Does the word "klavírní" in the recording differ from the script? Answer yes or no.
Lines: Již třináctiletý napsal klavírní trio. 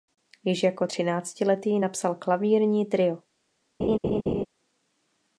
no